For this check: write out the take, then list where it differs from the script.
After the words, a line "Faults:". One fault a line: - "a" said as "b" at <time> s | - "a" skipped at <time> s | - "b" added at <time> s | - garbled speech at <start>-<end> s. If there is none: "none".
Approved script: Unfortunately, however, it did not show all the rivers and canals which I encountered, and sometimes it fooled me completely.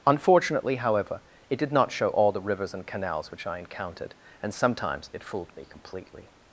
Unfortunately, however, it did not show all the rivers and canals which I encountered, and sometimes it fooled me completely.
Faults:
none